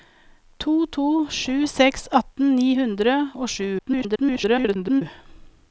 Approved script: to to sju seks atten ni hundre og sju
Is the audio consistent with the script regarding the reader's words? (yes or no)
no